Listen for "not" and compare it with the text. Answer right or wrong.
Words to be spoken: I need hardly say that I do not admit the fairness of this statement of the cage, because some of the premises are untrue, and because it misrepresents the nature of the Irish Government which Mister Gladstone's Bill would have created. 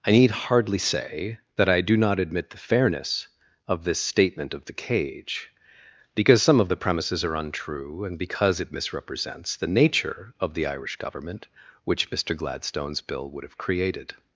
right